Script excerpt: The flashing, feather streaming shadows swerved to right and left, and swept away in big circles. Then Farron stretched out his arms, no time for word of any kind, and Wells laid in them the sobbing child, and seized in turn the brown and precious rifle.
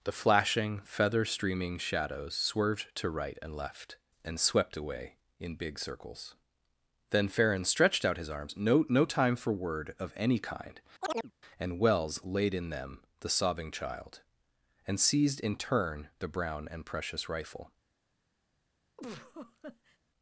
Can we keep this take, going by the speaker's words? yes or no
no